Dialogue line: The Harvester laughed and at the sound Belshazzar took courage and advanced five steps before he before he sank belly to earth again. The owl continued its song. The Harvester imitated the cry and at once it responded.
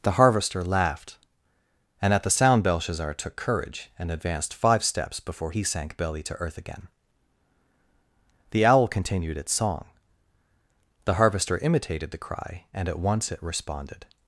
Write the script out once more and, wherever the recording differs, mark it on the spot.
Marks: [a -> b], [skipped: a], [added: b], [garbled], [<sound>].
The Harvester laughed and at the sound Belshazzar took courage and advanced five steps before he [skipped: before he] sank belly to earth again. The owl continued its song. The Harvester imitated the cry and at once it responded.